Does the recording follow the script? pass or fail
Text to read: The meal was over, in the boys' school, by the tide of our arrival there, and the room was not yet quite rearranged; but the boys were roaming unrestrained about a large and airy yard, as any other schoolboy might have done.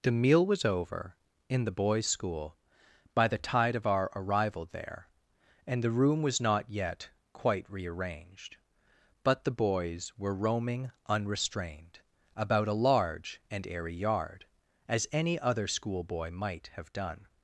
pass